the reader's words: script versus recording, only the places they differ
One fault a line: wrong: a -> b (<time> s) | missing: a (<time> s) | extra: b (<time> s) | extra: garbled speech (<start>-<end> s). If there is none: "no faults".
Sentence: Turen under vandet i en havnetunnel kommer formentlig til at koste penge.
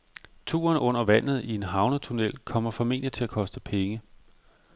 no faults